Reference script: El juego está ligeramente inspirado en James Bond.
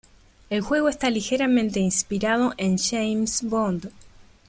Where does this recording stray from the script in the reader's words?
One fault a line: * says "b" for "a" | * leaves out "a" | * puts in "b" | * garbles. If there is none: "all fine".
all fine